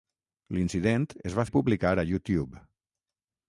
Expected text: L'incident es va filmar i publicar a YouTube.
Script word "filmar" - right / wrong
wrong